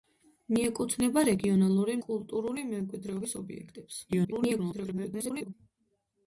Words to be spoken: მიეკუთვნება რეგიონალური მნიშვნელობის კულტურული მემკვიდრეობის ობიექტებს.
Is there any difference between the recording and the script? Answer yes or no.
yes